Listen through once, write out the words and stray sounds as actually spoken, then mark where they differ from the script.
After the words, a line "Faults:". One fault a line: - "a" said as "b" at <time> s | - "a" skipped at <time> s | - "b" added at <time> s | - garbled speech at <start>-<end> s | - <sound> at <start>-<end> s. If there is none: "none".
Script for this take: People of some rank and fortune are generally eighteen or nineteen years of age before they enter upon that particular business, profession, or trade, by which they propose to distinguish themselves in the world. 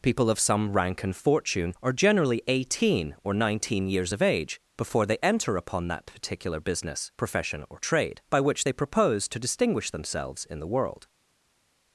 People of some rank and fortune are generally eighteen or nineteen years of age before they enter upon that particular business, profession, or trade, by which they propose to distinguish themselves in the world.
Faults:
none